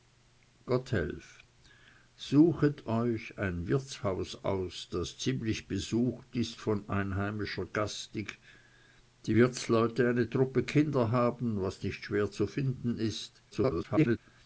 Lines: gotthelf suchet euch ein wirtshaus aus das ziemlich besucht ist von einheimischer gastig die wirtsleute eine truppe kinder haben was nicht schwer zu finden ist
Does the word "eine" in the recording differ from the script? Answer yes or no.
no